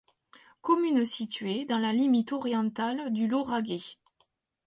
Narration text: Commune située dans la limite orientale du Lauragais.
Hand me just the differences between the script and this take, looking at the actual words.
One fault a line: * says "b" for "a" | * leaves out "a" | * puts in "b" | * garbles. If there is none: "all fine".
all fine